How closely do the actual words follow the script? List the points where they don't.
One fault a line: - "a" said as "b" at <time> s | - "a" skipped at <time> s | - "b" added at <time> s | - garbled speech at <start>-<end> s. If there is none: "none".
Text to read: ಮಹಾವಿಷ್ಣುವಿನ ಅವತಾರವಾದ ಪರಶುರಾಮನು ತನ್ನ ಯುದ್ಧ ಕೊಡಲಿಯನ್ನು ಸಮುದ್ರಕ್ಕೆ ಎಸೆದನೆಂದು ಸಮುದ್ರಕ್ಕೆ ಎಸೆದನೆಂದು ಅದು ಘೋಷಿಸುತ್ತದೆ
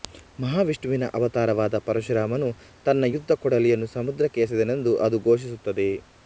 - "ಸಮುದ್ರಕ್ಕೆ ಎಸೆದನೆಂದು" skipped at 4.9 s